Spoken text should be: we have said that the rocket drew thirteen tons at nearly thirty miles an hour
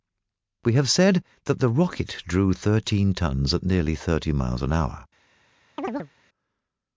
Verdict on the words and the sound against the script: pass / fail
fail